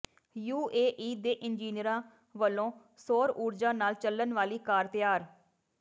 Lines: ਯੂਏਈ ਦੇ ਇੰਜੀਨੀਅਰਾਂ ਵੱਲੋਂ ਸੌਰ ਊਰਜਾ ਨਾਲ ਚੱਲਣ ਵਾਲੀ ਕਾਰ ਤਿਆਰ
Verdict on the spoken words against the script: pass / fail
pass